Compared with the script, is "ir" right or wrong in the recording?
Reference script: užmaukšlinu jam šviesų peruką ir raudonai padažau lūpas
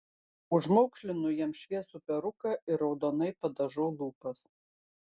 right